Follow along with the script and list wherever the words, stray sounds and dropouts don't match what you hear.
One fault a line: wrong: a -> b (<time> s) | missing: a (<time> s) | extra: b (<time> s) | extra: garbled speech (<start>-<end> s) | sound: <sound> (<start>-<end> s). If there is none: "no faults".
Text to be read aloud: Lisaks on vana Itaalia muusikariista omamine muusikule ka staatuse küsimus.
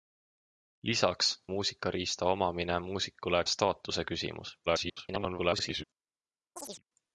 missing: on vana Itaalia (1.4 s)
missing: ka (3.4 s)
extra: garbled speech (4.7-5.8 s)
sound: chirp (6.6-6.8 s)